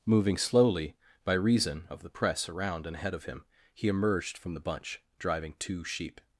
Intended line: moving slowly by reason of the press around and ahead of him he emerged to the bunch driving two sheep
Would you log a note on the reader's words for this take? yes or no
yes